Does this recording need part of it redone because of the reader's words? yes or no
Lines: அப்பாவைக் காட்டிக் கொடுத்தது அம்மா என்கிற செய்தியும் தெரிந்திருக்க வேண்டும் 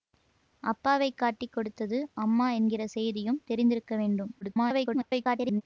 yes